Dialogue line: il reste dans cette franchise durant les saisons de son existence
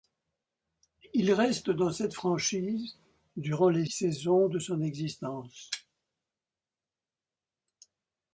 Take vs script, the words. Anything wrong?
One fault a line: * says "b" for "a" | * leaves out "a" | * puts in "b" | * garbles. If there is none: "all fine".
all fine